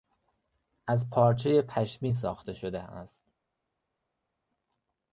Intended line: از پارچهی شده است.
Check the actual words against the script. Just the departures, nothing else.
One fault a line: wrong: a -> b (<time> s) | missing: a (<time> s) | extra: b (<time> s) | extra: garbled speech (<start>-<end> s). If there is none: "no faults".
extra: پشمی ساخته (1.6 s)